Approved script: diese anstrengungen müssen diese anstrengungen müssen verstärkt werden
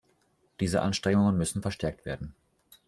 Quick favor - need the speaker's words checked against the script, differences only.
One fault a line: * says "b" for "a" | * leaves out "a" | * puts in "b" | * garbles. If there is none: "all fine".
* leaves out "diese anstrengungen müssen"